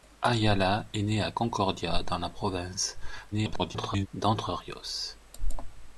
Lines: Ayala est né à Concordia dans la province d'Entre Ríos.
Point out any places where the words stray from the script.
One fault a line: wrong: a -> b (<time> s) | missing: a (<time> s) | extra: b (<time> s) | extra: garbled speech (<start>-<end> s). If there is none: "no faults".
extra: garbled speech (3.3-4.1 s)